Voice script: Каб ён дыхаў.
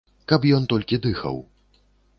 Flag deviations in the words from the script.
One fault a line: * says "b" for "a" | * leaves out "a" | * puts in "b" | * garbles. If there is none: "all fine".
* puts in "толькі"